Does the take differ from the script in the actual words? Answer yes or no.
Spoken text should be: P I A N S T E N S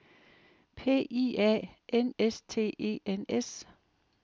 no